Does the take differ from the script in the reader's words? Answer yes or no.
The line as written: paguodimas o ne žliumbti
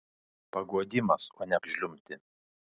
no